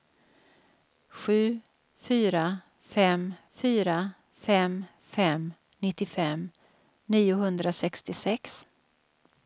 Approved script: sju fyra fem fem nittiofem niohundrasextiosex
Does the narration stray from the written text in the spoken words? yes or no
yes